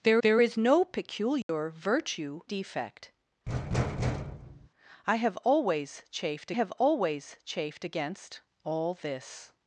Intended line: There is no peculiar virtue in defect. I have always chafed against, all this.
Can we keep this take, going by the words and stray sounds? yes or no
no